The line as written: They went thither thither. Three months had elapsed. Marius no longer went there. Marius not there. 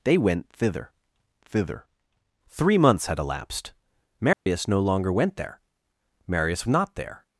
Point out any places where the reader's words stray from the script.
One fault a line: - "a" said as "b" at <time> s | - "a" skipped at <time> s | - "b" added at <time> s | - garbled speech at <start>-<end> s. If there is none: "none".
none